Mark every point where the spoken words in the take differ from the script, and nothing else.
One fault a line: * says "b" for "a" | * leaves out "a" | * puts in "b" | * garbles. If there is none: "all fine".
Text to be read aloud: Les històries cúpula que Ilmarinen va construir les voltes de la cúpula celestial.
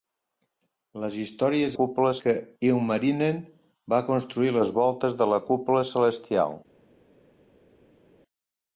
all fine